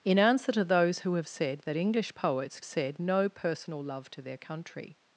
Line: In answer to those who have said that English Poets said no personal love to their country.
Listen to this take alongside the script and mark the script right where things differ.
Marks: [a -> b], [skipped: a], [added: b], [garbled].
In answer to those who have said that English Poets said no personal love to their country.